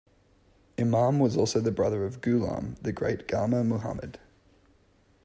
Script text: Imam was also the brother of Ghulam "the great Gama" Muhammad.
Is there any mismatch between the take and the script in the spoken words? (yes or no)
no